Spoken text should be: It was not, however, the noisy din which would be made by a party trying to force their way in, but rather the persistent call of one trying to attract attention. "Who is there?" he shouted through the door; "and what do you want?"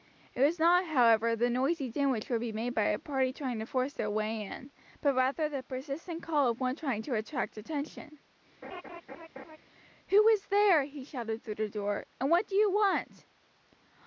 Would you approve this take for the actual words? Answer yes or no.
yes